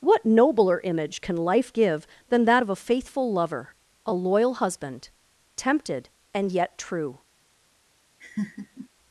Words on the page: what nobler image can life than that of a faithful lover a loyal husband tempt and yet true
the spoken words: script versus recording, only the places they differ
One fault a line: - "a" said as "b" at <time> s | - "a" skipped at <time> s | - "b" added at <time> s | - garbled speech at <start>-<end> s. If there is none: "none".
- "give" added at 1.7 s
- "tempt" said as "tempted" at 5.6 s